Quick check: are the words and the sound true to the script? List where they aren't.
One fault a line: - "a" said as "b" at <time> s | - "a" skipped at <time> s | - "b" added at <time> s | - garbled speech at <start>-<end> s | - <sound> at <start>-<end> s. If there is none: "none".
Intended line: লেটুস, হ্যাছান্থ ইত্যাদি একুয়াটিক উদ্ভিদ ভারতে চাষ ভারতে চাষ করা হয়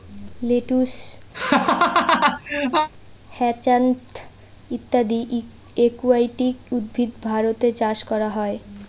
- laugh at 1.3-2.9 s
- "ভারতে চাষ" skipped at 8.0 s